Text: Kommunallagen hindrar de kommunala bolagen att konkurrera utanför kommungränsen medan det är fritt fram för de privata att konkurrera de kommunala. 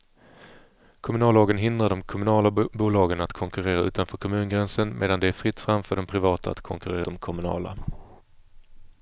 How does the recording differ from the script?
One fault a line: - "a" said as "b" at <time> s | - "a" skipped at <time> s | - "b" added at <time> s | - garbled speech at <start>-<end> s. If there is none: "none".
none